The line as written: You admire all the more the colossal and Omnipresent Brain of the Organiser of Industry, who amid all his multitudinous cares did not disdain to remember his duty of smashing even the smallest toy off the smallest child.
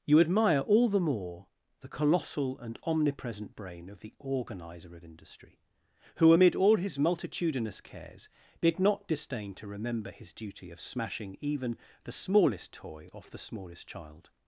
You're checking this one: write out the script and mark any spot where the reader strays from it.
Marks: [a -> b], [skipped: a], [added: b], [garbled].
You admire all the more the colossal and Omnipresent Brain of the Organiser of Industry, who amid all his multitudinous cares did not disdain to remember his duty of smashing even the smallest toy off the smallest child.